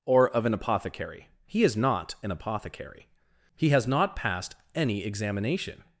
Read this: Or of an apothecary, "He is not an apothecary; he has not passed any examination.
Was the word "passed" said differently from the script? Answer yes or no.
no